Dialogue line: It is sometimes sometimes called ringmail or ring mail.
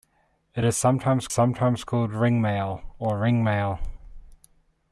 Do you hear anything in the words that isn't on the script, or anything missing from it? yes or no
no